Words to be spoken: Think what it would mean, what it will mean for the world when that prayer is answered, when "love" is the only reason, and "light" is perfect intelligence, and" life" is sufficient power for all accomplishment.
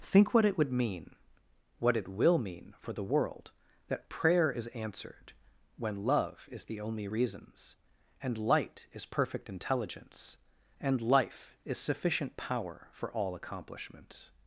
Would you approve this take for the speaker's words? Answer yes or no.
no